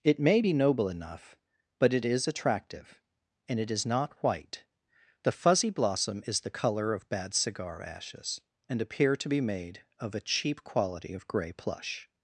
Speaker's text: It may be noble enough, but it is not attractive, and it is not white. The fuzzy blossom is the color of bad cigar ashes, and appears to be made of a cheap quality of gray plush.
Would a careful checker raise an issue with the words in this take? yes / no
yes